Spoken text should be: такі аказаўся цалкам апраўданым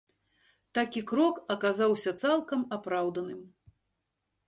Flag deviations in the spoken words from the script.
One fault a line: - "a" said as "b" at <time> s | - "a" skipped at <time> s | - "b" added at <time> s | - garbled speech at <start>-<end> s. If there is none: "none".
- "крок" added at 1.1 s